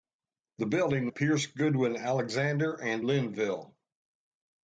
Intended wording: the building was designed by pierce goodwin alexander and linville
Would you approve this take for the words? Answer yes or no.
no